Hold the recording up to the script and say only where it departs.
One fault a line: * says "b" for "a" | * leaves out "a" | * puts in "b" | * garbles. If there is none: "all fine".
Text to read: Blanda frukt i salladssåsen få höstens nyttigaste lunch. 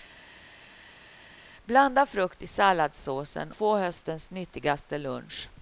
all fine